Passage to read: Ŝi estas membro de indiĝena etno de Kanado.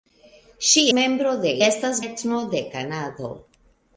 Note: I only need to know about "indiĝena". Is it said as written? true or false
false